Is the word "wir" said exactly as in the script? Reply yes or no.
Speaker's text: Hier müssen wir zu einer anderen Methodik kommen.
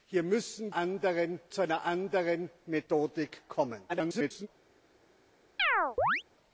no